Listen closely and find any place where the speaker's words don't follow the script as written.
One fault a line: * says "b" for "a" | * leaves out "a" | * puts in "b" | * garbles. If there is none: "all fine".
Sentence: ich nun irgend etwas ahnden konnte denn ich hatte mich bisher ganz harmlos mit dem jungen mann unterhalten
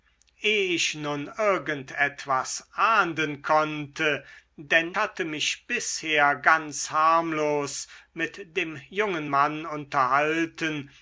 * leaves out "ich"